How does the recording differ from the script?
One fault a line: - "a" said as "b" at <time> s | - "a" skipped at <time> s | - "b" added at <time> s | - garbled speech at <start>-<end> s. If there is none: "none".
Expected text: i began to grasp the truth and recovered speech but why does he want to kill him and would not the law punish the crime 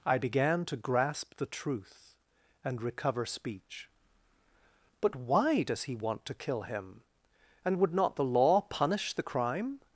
- "recovered" said as "recover" at 2.8 s